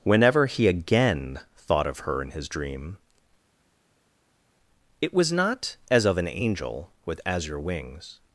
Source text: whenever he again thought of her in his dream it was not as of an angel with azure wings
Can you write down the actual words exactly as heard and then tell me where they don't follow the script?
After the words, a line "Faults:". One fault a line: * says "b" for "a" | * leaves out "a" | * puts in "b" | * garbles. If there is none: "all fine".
whenever he again thought of her in his dream it was not as of an angel with azure wings
Faults:
all fine